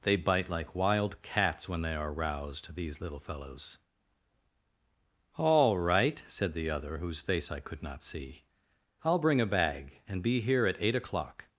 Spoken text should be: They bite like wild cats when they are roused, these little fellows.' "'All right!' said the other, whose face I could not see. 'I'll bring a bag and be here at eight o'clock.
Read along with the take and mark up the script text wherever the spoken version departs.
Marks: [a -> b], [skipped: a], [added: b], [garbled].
They bite like wild cats when they are roused, these little fellows.' "'All right!' said the other, whose face I could not see. 'I'll bring a bag and be here at eight o'clock.